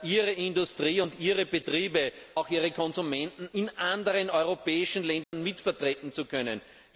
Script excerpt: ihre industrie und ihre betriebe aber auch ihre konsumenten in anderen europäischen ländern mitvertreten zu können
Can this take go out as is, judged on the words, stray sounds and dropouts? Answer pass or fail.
fail